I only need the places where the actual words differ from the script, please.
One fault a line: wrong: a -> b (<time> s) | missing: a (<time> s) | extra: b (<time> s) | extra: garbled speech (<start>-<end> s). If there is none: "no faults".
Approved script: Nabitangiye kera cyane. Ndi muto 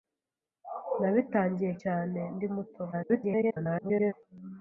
missing: kera (1.7 s)
extra: garbled speech (2.9-4.1 s)